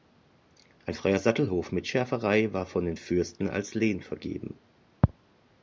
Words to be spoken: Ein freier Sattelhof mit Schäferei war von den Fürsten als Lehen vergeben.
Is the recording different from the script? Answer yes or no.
no